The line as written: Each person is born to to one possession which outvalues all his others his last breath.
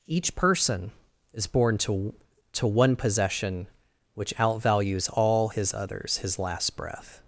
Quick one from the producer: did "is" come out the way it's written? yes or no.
yes